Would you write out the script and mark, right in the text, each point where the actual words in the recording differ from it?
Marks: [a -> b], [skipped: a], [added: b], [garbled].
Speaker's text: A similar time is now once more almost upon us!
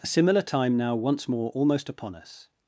A similar time [skipped: is] now once more almost upon us!